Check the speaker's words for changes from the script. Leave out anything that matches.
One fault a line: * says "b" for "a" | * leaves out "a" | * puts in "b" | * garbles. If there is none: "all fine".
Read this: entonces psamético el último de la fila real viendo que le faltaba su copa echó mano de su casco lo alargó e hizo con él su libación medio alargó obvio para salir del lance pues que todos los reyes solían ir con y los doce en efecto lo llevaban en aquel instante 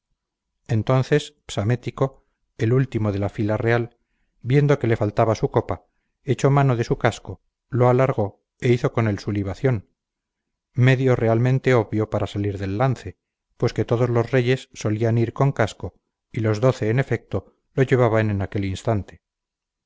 * says "realmente" for "alargó"
* puts in "casco"